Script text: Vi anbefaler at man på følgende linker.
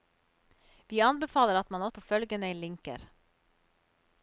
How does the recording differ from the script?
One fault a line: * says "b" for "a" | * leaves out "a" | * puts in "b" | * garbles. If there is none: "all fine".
all fine